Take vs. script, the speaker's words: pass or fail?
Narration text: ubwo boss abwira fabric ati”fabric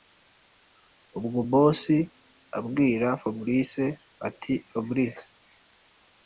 pass